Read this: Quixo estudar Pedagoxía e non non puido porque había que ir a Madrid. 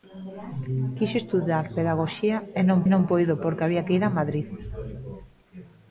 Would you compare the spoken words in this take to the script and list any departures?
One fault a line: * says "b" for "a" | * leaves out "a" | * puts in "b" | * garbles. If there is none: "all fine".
all fine